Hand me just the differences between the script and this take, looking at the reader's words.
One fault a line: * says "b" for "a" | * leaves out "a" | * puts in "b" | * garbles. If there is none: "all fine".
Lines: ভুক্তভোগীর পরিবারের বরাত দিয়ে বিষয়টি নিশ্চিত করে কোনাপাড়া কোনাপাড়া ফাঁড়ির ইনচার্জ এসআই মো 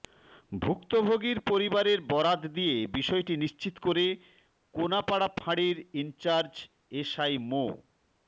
* leaves out "কোনাপাড়া"